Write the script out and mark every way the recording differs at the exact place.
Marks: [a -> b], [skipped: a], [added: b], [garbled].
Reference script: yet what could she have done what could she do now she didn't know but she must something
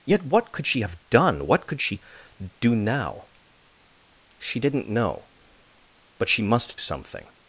yet what could she have done what could she do now she didn't know but she must something